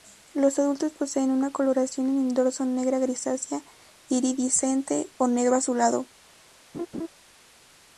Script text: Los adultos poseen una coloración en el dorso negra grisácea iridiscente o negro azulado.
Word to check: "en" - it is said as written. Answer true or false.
true